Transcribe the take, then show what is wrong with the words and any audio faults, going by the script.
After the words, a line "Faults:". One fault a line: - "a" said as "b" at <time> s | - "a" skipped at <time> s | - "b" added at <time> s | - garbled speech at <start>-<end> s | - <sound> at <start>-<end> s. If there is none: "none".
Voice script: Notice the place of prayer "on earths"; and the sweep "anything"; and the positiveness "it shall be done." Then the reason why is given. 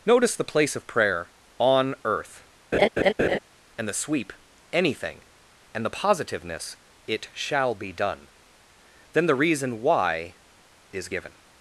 Notice the place of prayer "on earth"; and the sweep "anything"; and the positiveness "it shall be done." Then the reason why is given.
Faults:
- "earths" said as "earth" at 2.0 s
- laugh at 2.7-3.4 s